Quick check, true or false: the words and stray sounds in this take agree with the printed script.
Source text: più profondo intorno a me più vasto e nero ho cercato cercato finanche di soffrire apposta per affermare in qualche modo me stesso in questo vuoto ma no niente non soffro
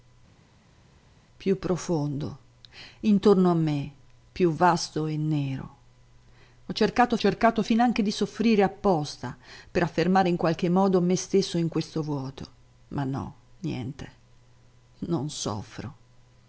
true